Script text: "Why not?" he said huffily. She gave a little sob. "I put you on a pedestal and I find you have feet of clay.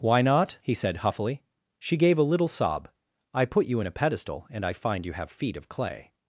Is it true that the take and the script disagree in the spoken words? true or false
true